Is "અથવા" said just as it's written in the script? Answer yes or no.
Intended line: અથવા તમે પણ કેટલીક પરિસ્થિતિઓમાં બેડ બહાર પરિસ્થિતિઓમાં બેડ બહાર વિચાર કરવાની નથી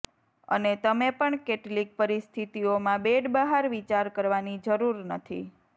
no